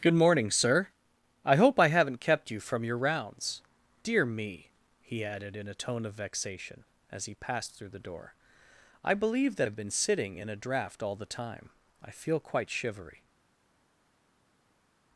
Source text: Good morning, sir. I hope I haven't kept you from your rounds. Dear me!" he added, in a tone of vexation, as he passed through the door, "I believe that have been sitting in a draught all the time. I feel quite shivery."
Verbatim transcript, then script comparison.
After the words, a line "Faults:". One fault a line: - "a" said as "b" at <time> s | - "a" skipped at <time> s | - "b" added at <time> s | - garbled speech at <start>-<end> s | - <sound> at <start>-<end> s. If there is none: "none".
Good morning, sir. I hope I haven't kept you from your rounds. Dear me!" he added, in a tone of vexation, as he passed through the door, "I believe that have been sitting in a draught all the time. I feel quite shivery."
Faults:
none